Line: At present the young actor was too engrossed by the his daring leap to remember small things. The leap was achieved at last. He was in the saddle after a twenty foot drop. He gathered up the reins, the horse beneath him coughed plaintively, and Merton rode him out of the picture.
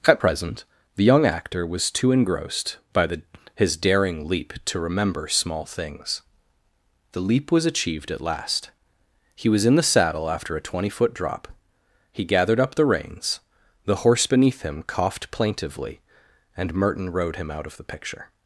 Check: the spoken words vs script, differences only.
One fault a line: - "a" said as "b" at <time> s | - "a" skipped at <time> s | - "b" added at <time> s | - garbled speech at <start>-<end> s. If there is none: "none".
none